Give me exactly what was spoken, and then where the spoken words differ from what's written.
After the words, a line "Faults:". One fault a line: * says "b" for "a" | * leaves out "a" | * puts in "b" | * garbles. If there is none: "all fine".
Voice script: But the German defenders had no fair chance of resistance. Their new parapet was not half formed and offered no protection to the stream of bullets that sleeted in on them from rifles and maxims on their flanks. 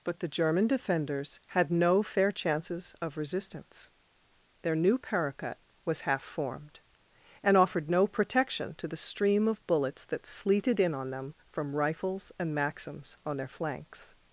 But the German defenders had no fair chances of resistance. Their new parapet was half formed and offered no protection to the stream of bullets that sleeted in on them from rifles and maxims on their flanks.
Faults:
* says "chances" for "chance"
* leaves out "not"